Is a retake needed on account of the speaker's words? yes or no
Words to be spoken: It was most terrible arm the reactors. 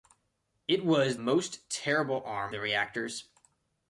no